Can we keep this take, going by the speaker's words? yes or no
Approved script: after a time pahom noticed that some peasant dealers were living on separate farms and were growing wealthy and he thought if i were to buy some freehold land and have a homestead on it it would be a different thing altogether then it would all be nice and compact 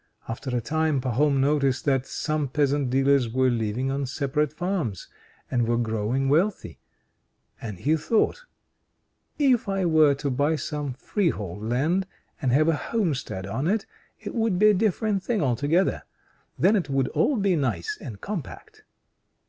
yes